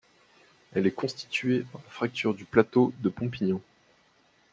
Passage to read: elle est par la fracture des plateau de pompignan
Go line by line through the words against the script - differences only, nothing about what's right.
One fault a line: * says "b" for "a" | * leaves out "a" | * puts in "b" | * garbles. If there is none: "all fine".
* puts in "constituée"
* says "du" for "des"